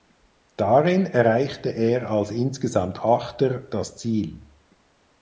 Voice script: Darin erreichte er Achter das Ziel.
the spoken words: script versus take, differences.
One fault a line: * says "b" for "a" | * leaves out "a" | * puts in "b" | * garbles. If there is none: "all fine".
* puts in "als insgesamt"